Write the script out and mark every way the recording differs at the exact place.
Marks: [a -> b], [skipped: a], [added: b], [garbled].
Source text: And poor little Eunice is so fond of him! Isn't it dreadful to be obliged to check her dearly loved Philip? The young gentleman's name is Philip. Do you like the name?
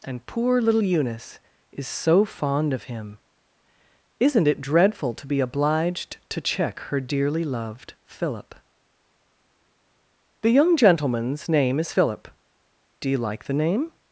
And poor little Eunice is so fond of him! Isn't it dreadful to be obliged to check her dearly loved Philip? The young gentleman's name is Philip. Do you like the name?